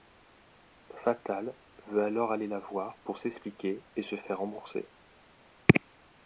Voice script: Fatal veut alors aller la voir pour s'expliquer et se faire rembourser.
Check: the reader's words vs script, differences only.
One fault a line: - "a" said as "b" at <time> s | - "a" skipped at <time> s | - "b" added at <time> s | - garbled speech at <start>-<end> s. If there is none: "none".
none